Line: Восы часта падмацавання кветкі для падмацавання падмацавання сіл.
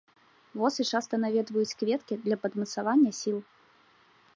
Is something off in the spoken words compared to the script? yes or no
yes